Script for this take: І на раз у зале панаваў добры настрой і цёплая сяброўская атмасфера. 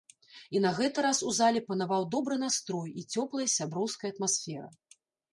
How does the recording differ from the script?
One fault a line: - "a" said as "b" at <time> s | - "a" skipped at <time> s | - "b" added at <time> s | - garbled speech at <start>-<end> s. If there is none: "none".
- "гэты" added at 0.8 s